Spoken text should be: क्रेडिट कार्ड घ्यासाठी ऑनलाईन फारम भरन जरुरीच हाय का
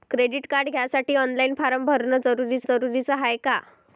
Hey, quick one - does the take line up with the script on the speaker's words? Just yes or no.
no